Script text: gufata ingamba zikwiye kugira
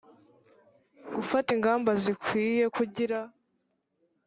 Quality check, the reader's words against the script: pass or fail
pass